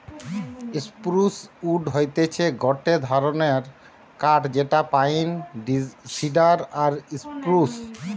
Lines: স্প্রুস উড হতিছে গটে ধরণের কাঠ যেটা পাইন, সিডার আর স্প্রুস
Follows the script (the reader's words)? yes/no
yes